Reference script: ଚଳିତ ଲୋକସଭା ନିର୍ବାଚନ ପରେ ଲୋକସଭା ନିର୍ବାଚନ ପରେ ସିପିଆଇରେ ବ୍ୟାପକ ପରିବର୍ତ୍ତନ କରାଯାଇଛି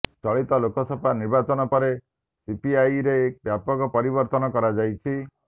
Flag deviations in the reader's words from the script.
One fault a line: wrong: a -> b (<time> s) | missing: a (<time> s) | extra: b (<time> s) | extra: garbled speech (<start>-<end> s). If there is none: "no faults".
missing: ଲୋକସଭା ନିର୍ବାଚନ ପରେ (1.9 s)